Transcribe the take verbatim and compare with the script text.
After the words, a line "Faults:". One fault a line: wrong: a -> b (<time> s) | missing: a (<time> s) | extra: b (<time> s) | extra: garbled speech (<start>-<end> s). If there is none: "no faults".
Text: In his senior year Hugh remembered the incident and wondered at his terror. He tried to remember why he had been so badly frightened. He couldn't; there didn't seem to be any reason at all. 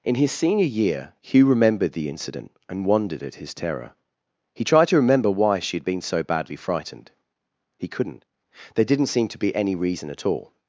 In his senior year Hugh remembered the incident and wondered at his terror. He tried to remember why she had been so badly frightened. He couldn't; there didn't seem to be any reason at all.
Faults:
wrong: he -> she (5.6 s)